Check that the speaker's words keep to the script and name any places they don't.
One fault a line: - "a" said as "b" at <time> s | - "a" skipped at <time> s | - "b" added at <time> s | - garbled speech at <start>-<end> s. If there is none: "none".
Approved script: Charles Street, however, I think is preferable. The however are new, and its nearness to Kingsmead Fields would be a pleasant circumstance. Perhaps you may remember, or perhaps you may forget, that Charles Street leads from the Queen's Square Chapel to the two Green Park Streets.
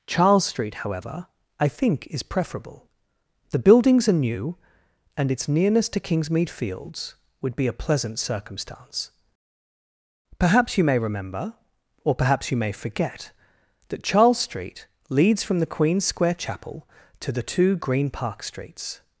- "however" said as "buildings" at 3.6 s